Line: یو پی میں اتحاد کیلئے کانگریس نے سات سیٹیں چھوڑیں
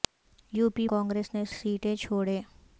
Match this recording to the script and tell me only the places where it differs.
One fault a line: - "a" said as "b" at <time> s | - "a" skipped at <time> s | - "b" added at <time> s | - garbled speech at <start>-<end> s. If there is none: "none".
- "میں اتحاد کیلئے" skipped at 0.9 s
- "سات" skipped at 1.4 s